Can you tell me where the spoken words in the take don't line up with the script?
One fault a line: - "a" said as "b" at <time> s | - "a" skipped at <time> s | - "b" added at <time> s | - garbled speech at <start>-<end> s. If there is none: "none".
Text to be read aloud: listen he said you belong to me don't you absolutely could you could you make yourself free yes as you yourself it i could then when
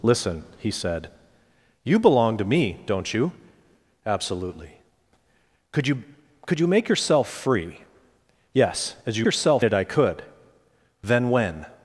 none